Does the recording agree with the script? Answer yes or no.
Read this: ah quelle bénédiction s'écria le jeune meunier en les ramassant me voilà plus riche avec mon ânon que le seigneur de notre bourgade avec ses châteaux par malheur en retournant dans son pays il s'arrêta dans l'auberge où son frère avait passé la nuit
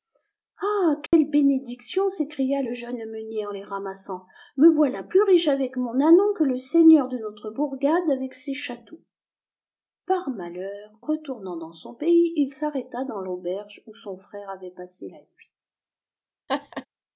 no